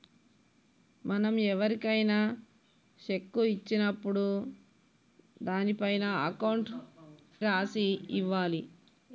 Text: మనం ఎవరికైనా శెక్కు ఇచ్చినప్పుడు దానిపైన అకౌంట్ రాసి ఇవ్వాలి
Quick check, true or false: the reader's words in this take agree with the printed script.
true